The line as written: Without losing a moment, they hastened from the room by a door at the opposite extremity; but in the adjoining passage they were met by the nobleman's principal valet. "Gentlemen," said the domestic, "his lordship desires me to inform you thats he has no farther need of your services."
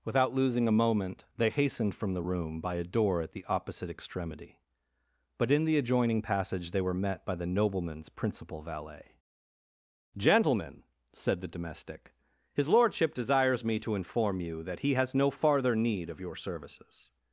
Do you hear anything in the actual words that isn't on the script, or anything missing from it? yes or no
yes